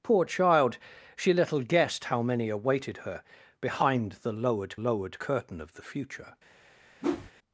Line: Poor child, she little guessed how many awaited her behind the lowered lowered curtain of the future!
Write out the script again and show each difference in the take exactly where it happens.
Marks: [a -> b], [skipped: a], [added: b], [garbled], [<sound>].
Poor child, she little guessed how many awaited her behind the lowered lowered curtain of the future! [whoosh]